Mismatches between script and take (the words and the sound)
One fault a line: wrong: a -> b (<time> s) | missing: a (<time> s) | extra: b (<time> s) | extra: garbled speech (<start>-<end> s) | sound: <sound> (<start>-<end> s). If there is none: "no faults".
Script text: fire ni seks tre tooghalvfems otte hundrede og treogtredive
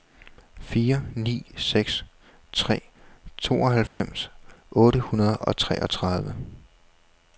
sound: dropout (3.9-4.0 s)